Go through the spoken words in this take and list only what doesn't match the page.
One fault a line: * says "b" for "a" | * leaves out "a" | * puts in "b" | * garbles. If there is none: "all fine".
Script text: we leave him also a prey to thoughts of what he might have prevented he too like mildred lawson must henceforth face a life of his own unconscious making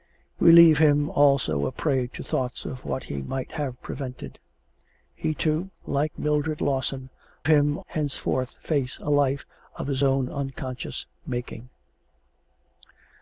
* says "him" for "must"